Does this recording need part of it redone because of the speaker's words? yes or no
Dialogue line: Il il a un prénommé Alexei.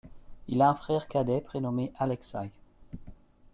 yes